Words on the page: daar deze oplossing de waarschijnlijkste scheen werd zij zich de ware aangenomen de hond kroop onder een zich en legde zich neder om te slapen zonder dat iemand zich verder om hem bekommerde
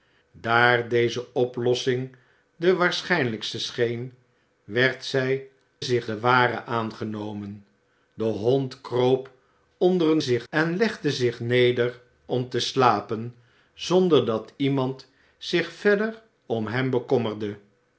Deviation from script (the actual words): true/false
false